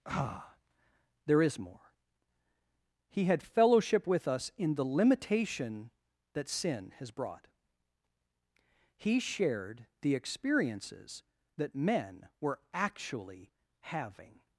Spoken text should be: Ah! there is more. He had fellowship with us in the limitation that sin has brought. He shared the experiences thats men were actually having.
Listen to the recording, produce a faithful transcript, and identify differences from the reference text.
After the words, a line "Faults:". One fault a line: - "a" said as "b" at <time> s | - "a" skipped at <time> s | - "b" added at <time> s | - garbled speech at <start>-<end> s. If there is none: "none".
Ah! there is more. He had fellowship with us in the limitation that sin has brought. He shared the experiences that men were actually having.
Faults:
- "thats" said as "that" at 11.6 s